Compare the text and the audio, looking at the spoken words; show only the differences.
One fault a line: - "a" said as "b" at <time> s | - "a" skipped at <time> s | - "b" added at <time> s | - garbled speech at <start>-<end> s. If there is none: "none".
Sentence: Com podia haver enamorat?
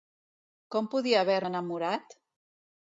none